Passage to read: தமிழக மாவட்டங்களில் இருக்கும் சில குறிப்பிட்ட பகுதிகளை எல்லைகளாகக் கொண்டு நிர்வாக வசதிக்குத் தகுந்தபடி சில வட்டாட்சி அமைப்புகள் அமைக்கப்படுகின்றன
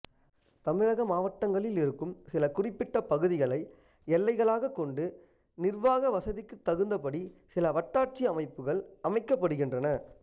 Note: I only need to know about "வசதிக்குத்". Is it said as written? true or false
true